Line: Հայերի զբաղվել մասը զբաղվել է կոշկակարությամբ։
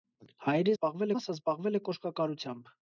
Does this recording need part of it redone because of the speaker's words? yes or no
no